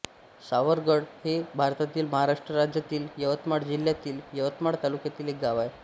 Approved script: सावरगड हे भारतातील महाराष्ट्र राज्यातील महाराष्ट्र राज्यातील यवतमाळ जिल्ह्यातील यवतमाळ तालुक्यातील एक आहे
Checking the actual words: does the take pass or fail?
fail